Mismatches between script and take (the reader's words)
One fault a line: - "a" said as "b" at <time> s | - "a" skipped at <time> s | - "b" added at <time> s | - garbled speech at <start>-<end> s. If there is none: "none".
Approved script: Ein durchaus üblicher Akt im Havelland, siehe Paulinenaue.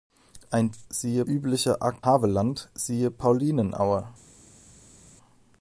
- "durchaus" said as "siehe" at 0.9 s
- "im" skipped at 2.1 s